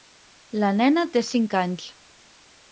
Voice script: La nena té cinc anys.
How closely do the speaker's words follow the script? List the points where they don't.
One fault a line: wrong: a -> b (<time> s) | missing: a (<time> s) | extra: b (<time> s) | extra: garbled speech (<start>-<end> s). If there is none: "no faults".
no faults